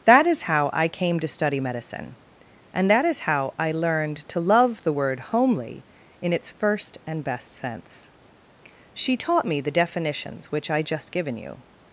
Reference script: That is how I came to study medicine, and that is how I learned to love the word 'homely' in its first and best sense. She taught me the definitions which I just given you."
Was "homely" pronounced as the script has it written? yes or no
yes